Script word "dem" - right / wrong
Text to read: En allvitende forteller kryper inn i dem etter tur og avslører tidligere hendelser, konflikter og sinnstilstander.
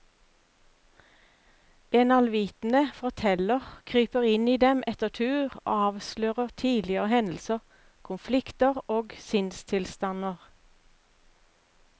right